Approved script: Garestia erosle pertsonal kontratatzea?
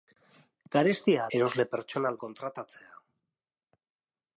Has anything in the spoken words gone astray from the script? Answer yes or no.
no